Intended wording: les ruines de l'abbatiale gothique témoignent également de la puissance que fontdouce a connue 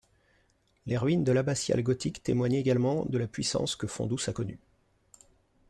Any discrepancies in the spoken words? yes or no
no